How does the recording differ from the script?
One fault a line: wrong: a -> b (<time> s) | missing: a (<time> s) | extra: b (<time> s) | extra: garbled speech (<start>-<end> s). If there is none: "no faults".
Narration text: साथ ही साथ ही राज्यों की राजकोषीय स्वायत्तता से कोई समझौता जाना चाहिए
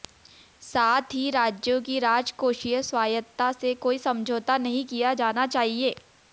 missing: साथ ही (1.3 s)
extra: नहीं किया (4.6 s)